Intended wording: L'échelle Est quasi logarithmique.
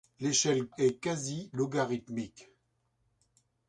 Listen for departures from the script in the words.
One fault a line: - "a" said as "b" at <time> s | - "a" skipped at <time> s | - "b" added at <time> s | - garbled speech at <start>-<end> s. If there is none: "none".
none